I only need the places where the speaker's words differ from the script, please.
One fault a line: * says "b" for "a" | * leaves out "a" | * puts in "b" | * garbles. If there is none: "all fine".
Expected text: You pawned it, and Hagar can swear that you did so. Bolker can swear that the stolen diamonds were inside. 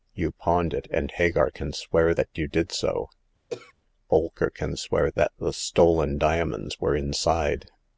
all fine